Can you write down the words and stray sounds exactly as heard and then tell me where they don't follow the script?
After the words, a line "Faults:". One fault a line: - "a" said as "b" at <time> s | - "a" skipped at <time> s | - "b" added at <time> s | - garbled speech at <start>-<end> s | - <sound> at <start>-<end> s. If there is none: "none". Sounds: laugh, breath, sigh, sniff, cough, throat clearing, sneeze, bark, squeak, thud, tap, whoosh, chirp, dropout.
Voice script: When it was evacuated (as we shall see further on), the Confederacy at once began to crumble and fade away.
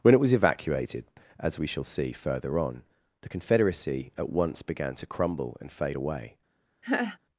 When it was evacuated (as we shall see further on), the Confederacy at once began to crumble and fade away.
Faults:
- laugh at 6.8-7.2 s